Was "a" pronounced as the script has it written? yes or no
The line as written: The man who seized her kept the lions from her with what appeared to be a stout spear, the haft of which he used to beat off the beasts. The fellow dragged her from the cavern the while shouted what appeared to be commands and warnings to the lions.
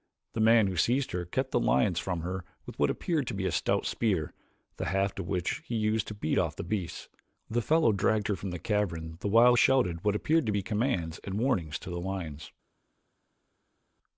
yes